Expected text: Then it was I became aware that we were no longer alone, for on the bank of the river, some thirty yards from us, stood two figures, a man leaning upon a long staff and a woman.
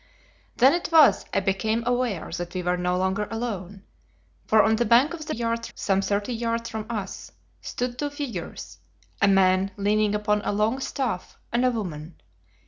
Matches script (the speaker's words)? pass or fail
fail